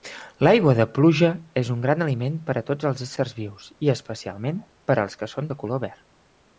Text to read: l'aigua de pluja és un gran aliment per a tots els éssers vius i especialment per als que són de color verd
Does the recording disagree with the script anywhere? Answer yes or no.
no